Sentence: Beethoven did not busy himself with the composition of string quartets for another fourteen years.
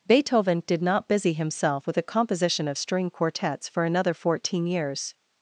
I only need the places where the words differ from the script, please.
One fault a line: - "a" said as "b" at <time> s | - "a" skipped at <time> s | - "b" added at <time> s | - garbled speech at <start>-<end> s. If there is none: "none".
- "the" said as "a" at 2.0 s